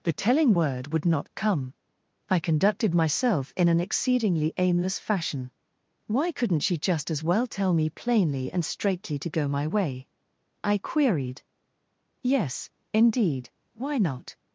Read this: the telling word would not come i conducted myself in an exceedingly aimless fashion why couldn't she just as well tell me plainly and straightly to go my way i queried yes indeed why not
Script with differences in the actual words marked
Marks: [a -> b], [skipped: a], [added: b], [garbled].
the telling word would not come i conducted myself in an exceedingly aimless fashion why couldn't she just as well tell me plainly and straightly to go my way i queried yes indeed why not